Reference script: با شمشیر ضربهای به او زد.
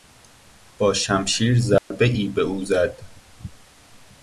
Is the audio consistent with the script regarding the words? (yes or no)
yes